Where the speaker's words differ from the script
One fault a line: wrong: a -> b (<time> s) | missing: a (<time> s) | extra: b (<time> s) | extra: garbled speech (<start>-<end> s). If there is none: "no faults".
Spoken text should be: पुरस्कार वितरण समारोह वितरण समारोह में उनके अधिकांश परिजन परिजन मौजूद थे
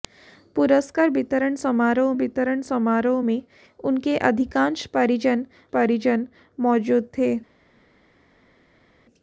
no faults